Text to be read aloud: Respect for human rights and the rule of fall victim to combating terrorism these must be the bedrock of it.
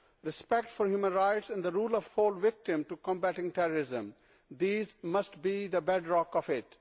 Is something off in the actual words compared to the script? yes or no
no